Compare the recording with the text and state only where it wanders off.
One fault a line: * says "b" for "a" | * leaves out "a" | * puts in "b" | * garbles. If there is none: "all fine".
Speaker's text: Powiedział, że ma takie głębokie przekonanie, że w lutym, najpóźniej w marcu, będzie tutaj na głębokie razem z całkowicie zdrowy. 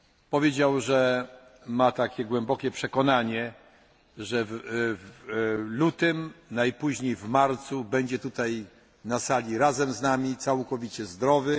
* says "sali" for "głębokie"
* puts in "nami"